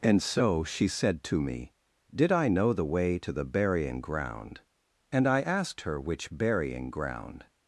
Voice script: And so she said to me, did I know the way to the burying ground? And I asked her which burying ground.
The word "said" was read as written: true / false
true